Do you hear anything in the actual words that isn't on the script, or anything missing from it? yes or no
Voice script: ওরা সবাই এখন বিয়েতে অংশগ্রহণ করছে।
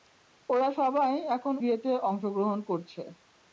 no